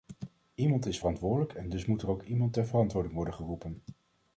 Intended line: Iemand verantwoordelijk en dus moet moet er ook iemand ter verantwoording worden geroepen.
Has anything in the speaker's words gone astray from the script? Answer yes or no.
yes